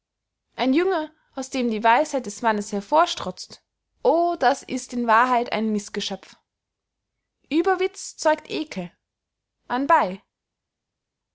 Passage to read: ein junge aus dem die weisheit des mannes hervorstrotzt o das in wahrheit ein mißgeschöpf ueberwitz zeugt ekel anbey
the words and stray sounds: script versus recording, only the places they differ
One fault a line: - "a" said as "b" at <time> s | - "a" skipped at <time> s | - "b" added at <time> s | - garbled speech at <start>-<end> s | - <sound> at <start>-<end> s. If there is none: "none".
- "ist" added at 4.6 s